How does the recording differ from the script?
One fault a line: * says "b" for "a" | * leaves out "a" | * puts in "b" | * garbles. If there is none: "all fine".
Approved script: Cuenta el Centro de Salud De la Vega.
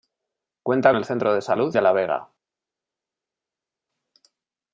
all fine